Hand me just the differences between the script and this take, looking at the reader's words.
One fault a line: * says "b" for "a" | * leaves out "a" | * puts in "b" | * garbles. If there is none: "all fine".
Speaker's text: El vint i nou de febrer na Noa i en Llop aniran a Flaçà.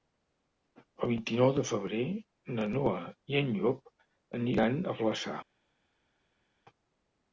all fine